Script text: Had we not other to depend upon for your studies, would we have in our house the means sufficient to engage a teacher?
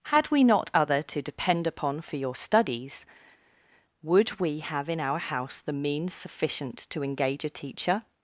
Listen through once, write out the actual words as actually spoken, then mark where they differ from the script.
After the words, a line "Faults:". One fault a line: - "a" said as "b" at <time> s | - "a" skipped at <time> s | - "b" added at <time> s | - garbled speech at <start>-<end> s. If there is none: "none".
Had we not other to depend upon for your studies, would we have in our house the means sufficient to engage a teacher?
Faults:
none